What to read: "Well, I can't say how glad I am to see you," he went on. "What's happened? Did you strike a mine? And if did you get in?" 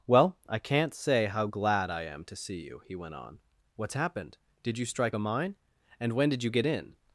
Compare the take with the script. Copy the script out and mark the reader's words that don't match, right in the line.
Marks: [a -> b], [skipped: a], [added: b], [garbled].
"Well, I can't say how glad I am to see you," he went on. "What's happened? Did you strike a mine? And [if -> when] did you get in?"